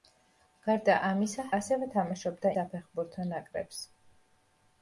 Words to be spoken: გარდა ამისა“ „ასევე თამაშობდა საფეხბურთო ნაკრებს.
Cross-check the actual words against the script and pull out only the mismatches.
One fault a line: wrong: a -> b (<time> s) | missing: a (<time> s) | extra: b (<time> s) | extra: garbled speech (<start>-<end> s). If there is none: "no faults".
no faults